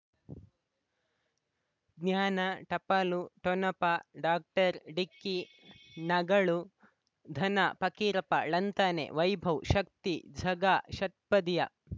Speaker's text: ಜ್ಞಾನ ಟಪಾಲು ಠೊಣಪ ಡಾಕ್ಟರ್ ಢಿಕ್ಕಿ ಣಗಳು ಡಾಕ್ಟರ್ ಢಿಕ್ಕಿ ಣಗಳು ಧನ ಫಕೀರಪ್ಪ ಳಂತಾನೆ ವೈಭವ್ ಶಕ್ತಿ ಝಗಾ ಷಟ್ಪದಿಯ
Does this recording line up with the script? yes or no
no